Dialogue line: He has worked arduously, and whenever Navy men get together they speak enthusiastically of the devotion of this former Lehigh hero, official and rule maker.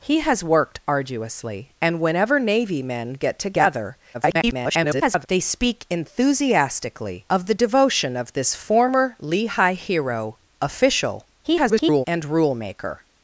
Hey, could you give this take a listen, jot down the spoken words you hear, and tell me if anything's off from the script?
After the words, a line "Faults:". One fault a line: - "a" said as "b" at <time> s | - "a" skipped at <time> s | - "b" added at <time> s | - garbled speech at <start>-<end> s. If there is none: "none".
He has worked arduously, and whenever Navy men get together [garbled] they speak enthusiastically of the devotion of this former Lehigh hero, official [garbled] and rule maker.
Faults:
- garbled speech at 4.1-5.3 s
- garbled speech at 11.4-12.1 s